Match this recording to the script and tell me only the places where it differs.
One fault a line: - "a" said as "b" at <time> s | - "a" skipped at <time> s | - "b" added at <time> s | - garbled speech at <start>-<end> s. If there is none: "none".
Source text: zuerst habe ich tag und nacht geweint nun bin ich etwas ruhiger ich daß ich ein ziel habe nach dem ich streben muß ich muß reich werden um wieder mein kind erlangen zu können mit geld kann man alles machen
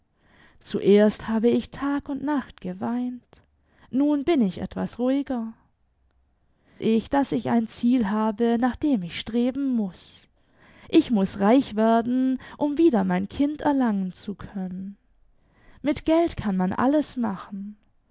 none